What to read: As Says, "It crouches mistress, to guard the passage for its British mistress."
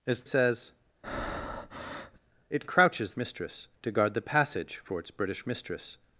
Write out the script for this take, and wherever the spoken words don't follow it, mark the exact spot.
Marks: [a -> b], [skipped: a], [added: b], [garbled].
As Says, "It crouches mistress, to guard the passage for its British mistress."